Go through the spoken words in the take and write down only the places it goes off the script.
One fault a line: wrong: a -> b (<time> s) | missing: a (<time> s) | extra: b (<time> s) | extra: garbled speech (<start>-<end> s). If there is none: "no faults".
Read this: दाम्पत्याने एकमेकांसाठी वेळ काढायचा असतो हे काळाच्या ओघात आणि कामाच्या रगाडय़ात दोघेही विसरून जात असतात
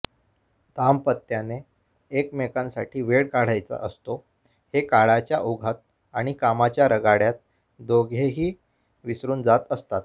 no faults